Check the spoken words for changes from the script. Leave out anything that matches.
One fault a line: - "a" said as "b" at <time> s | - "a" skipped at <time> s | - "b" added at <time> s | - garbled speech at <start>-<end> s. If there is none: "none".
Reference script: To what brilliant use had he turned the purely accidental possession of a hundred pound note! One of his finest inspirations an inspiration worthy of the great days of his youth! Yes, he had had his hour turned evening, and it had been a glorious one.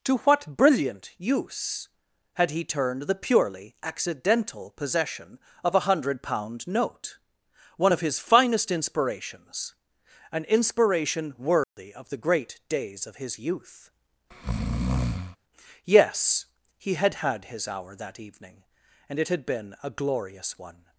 - "turned" said as "that" at 17.9 s